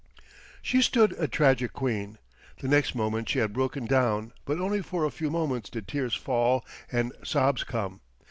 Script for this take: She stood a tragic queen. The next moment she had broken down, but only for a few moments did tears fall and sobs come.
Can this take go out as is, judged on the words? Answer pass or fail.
pass